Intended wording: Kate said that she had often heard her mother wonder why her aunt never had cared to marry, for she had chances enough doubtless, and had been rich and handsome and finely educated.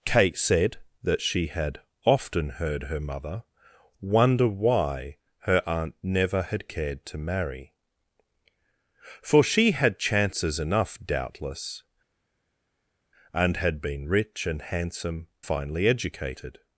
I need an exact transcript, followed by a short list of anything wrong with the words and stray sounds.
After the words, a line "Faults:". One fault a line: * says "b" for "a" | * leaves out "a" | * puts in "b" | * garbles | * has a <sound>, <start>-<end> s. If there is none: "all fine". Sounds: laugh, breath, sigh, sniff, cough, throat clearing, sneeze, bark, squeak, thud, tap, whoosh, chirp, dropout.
Kate said that she had often heard her mother wonder why her aunt never had cared to marry, for she had chances enough doubtless, and had been rich and handsome finely educated.
Faults:
* leaves out "and"